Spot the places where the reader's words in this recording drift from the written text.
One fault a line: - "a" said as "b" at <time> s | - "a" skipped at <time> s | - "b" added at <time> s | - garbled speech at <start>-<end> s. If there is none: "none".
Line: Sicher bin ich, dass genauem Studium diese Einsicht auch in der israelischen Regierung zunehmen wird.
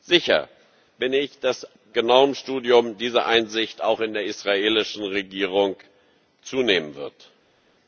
none